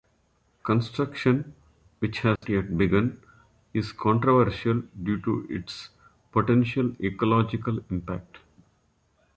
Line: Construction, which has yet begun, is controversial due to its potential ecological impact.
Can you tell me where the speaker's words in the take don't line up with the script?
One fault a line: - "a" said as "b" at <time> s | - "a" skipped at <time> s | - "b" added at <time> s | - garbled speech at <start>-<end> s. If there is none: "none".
none